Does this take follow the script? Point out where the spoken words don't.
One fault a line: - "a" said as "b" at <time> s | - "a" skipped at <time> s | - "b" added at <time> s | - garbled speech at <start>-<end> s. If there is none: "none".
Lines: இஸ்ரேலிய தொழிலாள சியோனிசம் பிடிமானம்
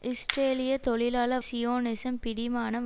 none